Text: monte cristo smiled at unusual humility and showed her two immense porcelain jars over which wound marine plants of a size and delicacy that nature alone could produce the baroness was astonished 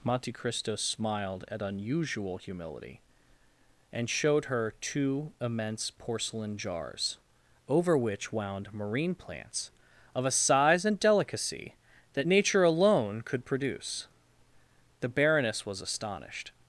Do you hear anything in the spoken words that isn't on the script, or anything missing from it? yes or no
no